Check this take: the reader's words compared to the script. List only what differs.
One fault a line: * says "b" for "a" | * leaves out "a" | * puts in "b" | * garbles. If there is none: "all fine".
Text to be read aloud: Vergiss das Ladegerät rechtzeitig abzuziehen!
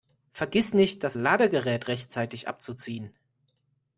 * puts in "nicht"